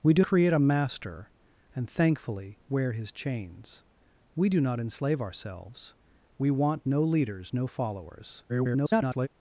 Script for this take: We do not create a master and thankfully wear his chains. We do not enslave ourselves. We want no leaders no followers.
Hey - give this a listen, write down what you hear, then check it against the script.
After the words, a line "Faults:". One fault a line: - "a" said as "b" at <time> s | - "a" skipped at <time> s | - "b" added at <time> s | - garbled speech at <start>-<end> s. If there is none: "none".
We do create a master and thankfully wear his chains. We do not enslave ourselves. We want no leaders no followers. [garbled]
Faults:
- "not" skipped at 0.2 s
- garbled speech at 8.5-9.3 s